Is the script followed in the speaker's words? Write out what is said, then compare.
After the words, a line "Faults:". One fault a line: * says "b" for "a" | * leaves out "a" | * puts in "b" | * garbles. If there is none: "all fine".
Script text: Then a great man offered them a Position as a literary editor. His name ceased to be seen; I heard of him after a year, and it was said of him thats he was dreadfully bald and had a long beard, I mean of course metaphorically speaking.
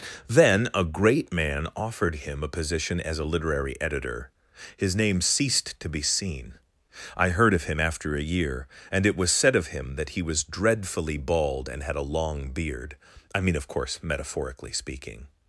Then a great man offered him a Position as a literary editor. His name ceased to be seen; I heard of him after a year, and it was said of him that he was dreadfully bald and had a long beard, I mean of course metaphorically speaking.
Faults:
* says "him" for "them"
* says "that" for "thats"